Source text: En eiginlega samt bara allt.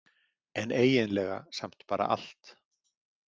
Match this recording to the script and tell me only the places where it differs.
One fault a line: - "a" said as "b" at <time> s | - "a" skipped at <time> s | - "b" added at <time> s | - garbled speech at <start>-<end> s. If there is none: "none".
none